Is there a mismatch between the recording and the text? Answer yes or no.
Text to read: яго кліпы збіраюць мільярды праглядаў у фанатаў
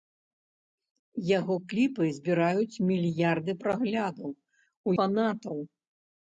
no